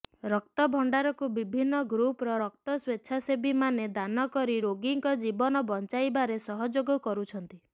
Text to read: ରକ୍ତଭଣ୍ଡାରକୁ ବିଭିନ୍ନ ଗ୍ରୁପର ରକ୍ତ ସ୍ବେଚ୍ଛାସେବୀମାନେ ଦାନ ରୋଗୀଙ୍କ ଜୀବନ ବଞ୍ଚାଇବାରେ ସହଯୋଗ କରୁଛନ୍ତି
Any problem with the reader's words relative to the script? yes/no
yes